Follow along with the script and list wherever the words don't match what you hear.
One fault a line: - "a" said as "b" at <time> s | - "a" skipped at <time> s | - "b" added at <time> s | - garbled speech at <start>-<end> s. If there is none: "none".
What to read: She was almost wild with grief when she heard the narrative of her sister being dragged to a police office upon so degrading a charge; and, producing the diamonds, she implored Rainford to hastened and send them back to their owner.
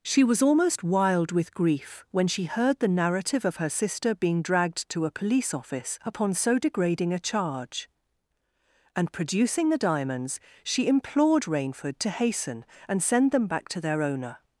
- "hastened" said as "hasten" at 12.1 s